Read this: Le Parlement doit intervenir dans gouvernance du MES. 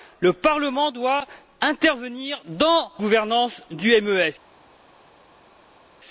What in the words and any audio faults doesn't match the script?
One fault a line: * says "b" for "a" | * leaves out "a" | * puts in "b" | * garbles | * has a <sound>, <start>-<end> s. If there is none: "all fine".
all fine